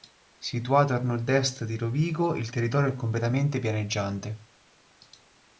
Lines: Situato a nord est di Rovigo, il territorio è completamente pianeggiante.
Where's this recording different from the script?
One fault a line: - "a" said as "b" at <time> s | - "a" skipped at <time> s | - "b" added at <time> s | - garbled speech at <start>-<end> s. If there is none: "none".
none